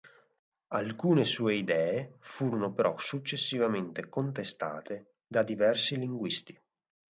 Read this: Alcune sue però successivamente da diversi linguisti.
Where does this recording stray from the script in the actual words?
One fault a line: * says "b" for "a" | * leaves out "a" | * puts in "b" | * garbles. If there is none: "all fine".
* puts in "idee furono"
* puts in "contestate"